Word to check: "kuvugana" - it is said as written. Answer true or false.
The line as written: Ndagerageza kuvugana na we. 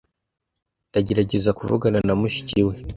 true